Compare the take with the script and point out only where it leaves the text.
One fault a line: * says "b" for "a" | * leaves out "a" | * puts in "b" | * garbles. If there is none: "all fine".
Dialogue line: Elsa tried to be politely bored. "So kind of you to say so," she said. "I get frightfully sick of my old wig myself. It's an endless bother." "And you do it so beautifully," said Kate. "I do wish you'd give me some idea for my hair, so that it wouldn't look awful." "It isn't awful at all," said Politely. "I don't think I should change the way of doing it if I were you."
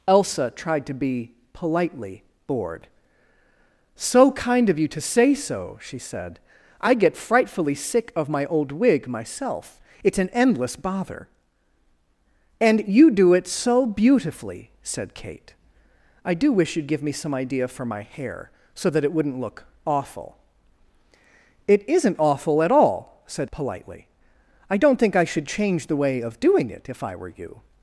all fine